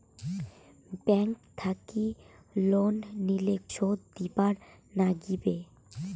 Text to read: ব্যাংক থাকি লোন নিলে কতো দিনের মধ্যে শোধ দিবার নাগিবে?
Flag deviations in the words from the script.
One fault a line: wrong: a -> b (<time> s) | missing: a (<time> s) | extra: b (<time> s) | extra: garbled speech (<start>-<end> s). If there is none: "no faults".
missing: কতো দিনের মধ্যে (3.5 s)